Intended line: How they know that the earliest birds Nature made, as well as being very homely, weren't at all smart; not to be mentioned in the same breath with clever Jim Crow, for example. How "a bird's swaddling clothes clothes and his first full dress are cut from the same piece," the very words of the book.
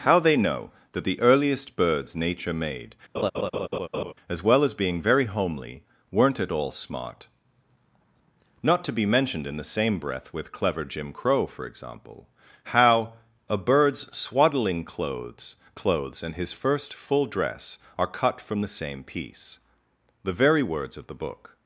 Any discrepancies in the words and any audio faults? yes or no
yes